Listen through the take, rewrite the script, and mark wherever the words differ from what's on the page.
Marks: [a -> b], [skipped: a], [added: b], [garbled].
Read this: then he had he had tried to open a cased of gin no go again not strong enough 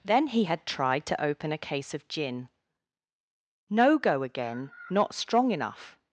then he had [skipped: he had] tried to open a [cased -> case] of gin no go again not strong enough